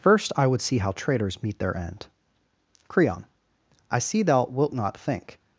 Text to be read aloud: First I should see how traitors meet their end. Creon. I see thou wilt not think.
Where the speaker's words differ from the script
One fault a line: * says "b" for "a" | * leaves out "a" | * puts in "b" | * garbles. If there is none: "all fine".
* says "would" for "should"